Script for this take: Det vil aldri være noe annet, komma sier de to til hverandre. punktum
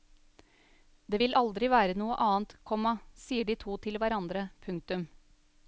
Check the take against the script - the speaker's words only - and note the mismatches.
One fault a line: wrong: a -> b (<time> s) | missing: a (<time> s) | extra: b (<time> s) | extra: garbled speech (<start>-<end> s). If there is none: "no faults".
no faults